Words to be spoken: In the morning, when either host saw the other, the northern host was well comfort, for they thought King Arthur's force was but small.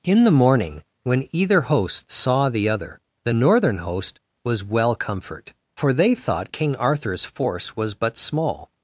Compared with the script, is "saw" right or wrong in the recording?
right